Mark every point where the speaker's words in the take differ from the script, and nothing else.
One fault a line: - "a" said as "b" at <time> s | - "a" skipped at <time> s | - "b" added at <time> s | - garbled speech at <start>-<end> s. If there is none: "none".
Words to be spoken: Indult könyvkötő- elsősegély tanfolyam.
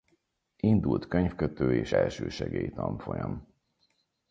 - "és" added at 1.8 s